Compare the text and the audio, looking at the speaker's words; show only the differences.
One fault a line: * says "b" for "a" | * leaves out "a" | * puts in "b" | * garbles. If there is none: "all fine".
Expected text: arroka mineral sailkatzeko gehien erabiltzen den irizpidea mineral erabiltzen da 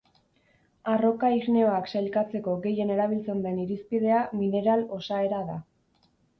* says "igneoak" for "mineral"
* says "osaera" for "erabiltzen"